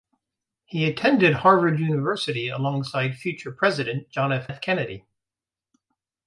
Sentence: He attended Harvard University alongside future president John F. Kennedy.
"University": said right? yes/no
yes